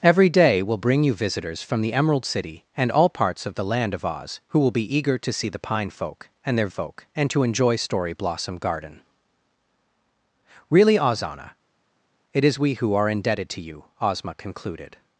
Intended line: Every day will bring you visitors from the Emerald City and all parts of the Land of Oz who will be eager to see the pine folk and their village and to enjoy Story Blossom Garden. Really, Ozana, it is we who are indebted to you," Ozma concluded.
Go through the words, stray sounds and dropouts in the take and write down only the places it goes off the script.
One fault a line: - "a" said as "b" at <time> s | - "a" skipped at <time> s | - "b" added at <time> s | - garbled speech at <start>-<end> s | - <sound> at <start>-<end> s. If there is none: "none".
- "village" said as "folk" at 6.7 s